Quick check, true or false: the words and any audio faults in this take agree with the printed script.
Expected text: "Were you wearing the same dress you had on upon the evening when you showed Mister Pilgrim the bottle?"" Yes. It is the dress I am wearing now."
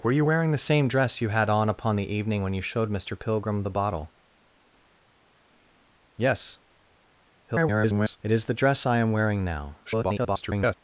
false